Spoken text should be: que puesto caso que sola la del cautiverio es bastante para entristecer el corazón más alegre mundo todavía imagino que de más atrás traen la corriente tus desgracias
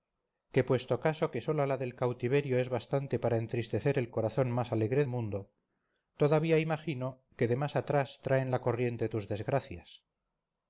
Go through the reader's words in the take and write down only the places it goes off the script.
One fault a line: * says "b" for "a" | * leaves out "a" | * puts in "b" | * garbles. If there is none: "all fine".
all fine